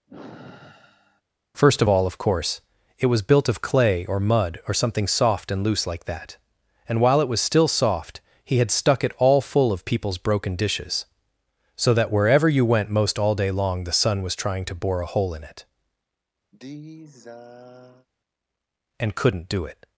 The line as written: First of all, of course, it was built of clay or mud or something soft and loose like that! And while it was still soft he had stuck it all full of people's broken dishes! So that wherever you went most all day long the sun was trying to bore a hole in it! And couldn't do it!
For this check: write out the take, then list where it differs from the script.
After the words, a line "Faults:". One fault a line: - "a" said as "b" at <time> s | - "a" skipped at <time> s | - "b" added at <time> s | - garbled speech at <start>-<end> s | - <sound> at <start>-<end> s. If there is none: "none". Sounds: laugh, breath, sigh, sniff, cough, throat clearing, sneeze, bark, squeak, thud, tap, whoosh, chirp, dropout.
First of all, of course, it was built of clay or mud or something soft and loose like that! And while it was still soft he had stuck it all full of people's broken dishes! So that wherever you went most all day long the sun was trying to bore a hole in it! And couldn't do it!
Faults:
- sigh at 0.1-1.2 s
- sigh at 16.5-18.1 s